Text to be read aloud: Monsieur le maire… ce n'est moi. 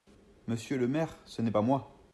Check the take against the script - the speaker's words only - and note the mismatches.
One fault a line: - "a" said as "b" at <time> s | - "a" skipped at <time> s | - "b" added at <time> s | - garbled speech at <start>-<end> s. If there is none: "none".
- "pas" added at 1.5 s